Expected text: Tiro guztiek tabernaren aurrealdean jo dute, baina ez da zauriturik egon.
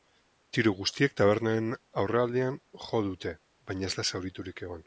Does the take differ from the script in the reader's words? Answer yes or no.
no